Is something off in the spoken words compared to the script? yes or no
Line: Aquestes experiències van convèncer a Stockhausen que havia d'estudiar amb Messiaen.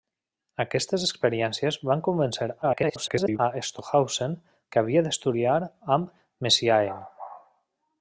yes